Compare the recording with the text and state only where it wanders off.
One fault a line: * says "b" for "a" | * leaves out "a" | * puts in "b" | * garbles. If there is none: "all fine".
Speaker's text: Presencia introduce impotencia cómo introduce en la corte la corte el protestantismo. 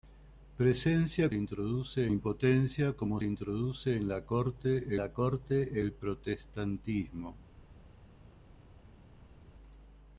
all fine